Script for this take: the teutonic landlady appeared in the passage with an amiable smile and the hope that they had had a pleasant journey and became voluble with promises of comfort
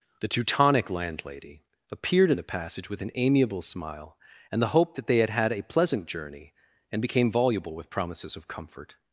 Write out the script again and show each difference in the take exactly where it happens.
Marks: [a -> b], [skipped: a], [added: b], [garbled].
the teutonic landlady appeared in the passage with an amiable smile and the hope that they had had a pleasant journey and became voluble with promises of comfort